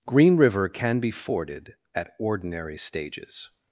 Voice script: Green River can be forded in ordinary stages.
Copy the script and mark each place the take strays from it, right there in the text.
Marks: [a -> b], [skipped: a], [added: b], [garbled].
Green River can be forded [in -> at] ordinary stages.